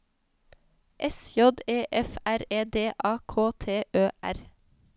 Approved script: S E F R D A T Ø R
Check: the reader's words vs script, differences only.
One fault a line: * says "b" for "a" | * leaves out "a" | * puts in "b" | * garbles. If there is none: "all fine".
* puts in "J"
* puts in "E"
* puts in "K"